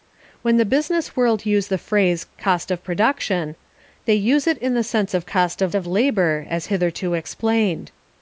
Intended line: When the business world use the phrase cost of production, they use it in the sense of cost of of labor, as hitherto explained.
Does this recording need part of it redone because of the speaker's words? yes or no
no